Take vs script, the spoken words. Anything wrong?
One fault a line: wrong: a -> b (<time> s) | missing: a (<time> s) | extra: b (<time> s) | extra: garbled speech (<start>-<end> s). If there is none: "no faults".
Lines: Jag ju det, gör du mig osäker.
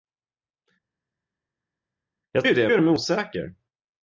no faults